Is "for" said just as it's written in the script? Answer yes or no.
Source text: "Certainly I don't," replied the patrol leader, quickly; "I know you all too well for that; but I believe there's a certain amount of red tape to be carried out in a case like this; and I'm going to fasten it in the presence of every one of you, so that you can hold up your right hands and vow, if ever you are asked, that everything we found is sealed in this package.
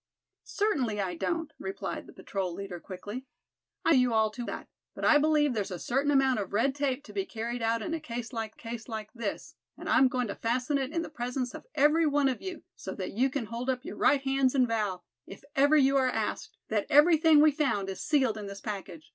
no